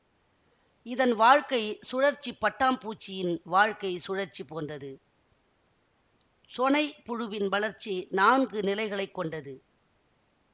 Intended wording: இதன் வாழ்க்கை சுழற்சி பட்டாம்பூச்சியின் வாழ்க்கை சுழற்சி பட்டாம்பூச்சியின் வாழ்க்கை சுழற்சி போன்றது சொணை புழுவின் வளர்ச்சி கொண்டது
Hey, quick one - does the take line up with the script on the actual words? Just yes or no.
no